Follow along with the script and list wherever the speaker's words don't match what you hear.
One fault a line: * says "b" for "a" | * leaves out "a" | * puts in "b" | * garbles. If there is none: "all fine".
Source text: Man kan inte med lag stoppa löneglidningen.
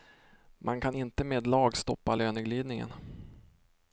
all fine